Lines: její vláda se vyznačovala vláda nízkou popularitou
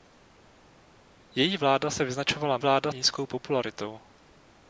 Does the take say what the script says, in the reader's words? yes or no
yes